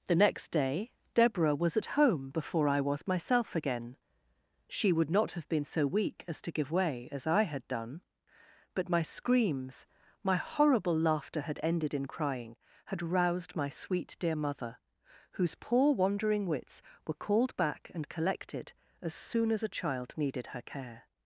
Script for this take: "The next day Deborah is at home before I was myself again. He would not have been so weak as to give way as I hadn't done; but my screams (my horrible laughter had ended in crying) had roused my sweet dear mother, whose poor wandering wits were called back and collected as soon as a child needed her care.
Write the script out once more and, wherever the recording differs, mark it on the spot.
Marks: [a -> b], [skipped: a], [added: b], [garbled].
"The next day Deborah [is -> was] at home before I was myself again. [He -> She] would not have been so weak as to give way as I [hadn't -> had] done; but my screams (my horrible laughter had ended in crying) had roused my sweet dear mother, whose poor wandering wits were called back and collected as soon as a child needed her care.